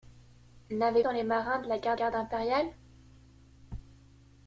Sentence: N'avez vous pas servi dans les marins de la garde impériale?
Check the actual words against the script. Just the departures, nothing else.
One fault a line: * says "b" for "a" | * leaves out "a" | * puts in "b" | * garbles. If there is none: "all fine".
* leaves out "vous pas servi"
* puts in "garde"